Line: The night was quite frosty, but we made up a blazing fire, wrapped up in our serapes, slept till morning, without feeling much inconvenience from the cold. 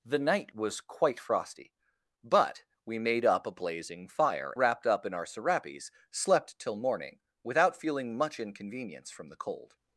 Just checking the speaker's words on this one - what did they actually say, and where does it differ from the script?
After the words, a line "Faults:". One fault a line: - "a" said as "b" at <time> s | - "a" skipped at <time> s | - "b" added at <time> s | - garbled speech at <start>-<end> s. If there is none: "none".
The night was quite frosty, but we made up a blazing fire, wrapped up in our serapes, slept till morning, without feeling much inconvenience from the cold.
Faults:
none